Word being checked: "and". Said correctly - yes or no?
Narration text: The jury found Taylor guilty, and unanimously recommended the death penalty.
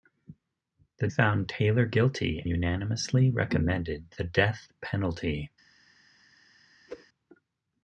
no